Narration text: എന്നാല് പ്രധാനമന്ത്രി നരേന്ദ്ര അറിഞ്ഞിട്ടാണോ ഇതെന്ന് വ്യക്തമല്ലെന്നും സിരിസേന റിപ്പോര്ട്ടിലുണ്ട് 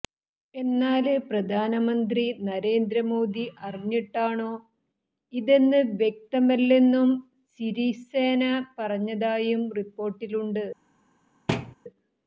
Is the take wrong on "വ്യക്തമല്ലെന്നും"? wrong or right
right